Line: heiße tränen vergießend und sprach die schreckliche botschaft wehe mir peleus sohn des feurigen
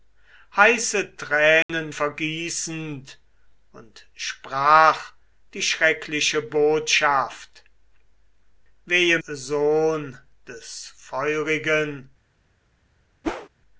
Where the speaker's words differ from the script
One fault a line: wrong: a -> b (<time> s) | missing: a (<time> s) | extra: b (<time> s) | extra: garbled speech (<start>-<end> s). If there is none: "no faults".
missing: mir peleus (9.2 s)